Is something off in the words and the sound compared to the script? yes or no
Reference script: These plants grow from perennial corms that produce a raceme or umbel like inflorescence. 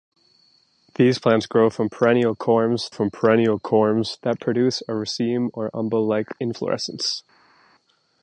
yes